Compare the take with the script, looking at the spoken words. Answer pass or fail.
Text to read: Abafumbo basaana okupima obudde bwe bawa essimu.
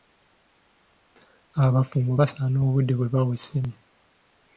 fail